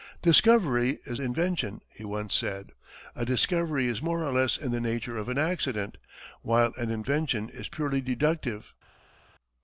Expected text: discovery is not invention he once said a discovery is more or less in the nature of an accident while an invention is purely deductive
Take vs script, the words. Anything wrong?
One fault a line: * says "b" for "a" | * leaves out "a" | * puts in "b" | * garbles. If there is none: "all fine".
* leaves out "not"